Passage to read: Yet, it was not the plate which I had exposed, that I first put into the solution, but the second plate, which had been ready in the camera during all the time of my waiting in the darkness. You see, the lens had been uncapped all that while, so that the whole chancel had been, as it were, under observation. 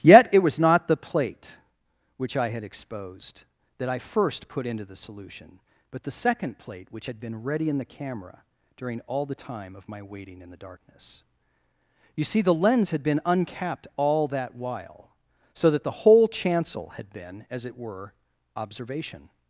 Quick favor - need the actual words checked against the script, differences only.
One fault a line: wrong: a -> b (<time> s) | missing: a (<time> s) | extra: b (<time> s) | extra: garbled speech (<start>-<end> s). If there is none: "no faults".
missing: under (18.1 s)